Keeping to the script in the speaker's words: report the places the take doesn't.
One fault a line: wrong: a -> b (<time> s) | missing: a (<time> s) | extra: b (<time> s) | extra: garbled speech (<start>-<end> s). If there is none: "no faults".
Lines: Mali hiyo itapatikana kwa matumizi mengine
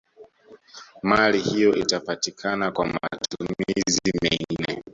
no faults